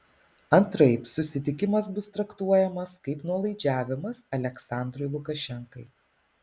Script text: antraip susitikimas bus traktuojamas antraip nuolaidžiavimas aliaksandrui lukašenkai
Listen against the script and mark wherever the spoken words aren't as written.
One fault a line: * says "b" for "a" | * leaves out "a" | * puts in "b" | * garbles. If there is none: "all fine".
* says "kaip" for "antraip"